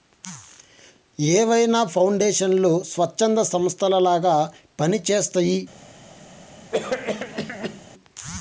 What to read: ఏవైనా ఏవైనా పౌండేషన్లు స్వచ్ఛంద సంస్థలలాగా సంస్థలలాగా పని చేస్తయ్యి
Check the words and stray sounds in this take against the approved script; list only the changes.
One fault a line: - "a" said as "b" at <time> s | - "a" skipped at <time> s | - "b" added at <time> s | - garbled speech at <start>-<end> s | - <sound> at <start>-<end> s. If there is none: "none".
- "ఏవైనా" skipped at 1.8 s
- "సంస్థలలాగా" skipped at 4.4 s
- cough at 6.7-7.8 s